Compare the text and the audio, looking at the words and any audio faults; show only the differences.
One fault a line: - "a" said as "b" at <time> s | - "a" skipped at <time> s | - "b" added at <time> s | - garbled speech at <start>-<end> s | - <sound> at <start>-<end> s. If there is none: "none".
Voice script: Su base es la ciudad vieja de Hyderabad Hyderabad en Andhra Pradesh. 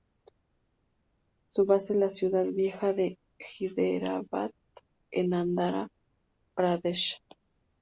- "Hyderabad" skipped at 4.5 s